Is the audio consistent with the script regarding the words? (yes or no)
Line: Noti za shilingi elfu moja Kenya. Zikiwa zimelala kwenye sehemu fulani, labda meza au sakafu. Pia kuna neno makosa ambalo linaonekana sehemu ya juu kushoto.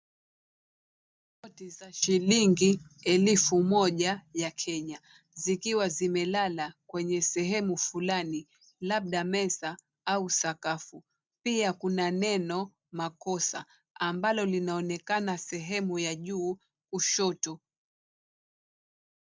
no